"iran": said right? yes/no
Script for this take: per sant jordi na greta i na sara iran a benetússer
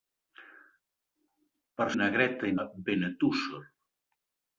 no